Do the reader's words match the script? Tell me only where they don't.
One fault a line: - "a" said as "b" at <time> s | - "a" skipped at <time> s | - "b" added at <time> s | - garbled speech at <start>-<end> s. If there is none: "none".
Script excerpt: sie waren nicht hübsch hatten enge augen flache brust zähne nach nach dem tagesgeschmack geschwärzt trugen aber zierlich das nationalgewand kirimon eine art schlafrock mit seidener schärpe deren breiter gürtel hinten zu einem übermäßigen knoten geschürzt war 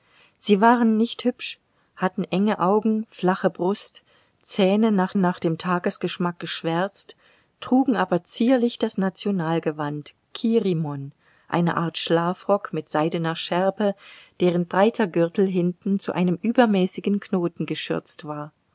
none